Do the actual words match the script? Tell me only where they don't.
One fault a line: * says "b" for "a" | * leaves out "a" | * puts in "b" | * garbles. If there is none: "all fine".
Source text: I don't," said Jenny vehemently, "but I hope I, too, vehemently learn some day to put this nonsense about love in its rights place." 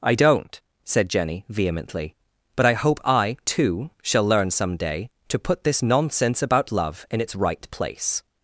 * says "shall" for "vehemently"
* says "right" for "rights"